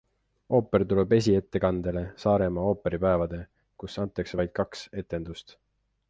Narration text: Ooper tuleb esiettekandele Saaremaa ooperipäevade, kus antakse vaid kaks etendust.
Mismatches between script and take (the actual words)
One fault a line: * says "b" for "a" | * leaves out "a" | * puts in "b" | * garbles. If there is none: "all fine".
all fine